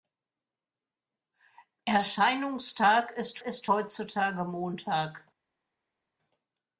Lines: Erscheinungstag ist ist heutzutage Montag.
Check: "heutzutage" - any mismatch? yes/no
no